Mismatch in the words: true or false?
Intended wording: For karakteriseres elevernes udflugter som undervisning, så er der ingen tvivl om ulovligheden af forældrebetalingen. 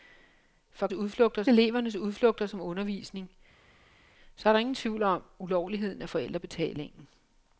true